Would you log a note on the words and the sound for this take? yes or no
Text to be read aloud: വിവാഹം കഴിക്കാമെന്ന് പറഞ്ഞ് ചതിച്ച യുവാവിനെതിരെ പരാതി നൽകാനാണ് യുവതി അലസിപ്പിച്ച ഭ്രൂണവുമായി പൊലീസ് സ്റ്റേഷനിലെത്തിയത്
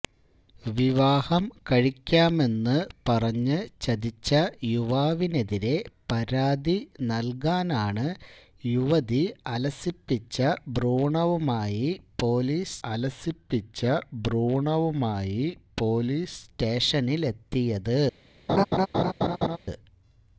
yes